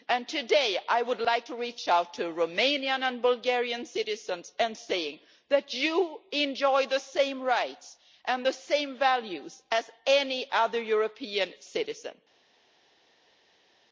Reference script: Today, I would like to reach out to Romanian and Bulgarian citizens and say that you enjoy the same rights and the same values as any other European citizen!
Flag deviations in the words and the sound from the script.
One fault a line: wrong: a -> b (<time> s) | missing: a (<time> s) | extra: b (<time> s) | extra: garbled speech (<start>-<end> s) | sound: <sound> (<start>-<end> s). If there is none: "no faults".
no faults